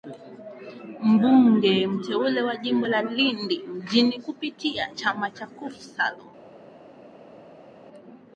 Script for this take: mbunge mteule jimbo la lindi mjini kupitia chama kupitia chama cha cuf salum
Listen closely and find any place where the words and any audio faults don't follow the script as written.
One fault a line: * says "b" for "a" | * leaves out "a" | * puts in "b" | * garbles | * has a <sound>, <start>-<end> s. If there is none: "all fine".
* puts in "wa"
* leaves out "kupitia chama"